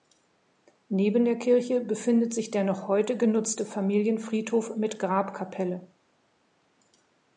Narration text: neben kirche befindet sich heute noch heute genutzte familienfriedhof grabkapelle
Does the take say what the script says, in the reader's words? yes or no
no